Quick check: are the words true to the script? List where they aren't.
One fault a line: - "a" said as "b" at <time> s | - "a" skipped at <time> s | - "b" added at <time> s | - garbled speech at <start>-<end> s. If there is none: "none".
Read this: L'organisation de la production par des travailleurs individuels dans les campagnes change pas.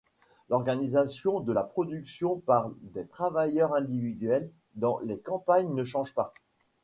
- "ne" added at 5.7 s